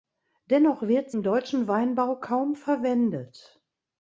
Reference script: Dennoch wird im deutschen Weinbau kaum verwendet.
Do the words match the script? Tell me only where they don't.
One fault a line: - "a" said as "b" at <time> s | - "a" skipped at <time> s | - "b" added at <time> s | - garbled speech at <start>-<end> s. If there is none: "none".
none